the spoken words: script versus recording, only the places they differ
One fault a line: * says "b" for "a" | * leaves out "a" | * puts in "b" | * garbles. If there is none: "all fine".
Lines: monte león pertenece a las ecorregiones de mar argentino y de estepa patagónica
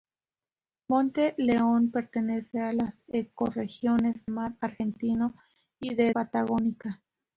* leaves out "de"
* leaves out "estepa"